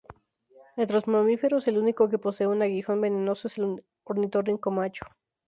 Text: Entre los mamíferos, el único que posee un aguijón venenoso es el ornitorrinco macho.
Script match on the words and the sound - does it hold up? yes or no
yes